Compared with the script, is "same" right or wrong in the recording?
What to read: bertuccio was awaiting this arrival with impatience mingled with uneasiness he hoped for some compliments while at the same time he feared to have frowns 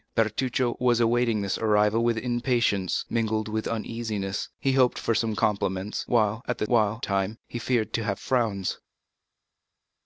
wrong